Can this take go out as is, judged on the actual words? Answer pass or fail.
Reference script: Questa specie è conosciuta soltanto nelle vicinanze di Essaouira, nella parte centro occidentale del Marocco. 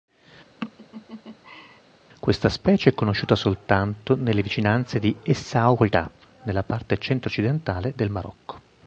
pass